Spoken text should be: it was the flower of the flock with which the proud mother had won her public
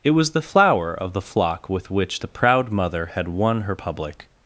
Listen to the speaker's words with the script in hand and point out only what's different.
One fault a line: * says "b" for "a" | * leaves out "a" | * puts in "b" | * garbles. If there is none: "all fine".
all fine